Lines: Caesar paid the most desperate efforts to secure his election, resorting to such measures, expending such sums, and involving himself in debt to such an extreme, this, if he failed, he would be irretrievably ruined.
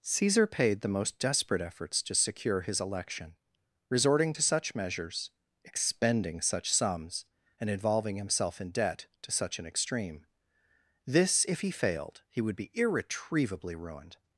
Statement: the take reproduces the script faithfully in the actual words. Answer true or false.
true